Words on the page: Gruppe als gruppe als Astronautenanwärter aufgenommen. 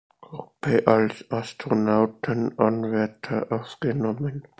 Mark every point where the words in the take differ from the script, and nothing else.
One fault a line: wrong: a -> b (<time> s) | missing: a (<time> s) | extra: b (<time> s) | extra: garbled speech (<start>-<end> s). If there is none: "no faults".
missing: gruppe als (1.2 s)